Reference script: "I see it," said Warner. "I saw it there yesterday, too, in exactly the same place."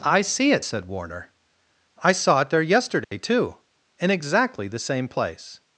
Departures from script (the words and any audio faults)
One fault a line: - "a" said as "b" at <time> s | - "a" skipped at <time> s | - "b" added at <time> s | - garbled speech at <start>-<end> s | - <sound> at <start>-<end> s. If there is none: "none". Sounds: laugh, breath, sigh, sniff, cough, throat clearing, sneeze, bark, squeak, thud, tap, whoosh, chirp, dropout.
- dropout at 3.0-3.1 s